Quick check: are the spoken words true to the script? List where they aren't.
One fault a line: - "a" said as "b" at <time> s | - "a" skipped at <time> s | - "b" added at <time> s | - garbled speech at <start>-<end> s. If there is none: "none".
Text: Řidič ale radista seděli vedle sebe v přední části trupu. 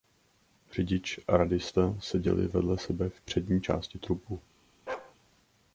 - "ale" said as "a" at 1.3 s